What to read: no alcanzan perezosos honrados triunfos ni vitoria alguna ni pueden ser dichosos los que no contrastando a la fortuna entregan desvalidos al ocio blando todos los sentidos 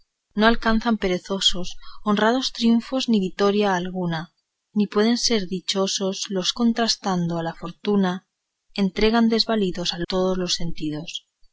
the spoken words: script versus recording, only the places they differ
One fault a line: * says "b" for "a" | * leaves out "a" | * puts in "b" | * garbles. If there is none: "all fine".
* leaves out "que no"
* leaves out "ocio blando"